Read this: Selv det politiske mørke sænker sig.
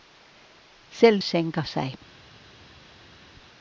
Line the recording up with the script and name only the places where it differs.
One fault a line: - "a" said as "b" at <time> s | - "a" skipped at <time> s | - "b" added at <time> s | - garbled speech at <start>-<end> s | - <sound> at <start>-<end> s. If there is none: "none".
- "det politiske mørke" skipped at 1.2 s